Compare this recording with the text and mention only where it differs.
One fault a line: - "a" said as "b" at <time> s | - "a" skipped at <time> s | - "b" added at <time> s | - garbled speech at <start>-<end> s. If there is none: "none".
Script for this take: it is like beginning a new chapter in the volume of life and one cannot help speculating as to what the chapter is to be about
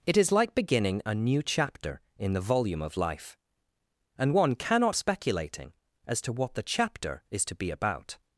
- "help" skipped at 4.9 s